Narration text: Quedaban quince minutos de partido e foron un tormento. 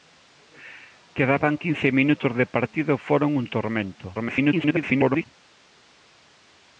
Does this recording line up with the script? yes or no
no